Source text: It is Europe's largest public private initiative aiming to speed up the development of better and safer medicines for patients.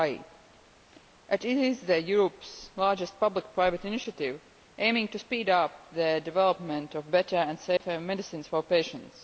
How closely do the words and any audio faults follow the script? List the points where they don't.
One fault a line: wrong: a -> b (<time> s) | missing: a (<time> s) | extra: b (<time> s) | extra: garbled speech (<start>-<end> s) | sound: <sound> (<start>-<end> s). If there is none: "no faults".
sound: dropout (7.8-7.8 s)